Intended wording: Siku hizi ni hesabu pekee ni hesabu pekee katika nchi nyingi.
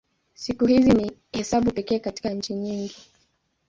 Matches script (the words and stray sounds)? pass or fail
fail